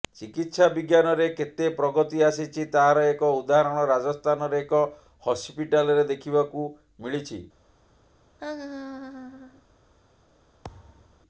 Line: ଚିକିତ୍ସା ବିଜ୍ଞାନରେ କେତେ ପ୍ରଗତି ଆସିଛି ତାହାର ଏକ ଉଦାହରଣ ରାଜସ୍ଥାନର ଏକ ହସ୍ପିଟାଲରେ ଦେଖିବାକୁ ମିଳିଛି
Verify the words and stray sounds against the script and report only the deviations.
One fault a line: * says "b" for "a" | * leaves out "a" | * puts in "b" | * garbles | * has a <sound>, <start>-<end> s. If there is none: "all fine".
* has a laugh, 8.4-9.6 s
* has a thud, 10.6-11.2 s